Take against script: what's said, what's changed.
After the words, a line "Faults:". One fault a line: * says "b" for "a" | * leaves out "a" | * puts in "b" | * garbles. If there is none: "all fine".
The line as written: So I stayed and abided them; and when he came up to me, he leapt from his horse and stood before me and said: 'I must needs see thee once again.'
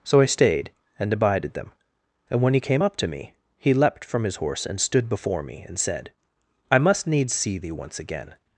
So I stayed and abided them; and when he came up to me, he leapt from his horse and stood before me and said: 'I must needs see thee once again.'
Faults:
all fine